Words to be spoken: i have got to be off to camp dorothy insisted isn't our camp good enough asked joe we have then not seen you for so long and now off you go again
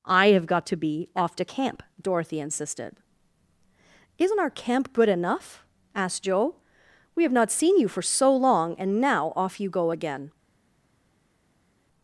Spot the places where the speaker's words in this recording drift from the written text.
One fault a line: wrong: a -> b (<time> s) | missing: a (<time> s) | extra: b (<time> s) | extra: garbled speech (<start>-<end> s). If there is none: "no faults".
missing: then (7.3 s)